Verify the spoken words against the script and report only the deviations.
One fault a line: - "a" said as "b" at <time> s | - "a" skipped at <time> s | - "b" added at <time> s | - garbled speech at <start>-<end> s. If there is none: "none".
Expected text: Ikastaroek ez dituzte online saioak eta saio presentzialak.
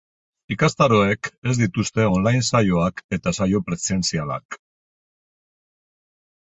none